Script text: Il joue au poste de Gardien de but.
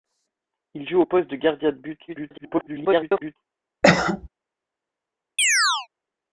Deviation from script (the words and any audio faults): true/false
true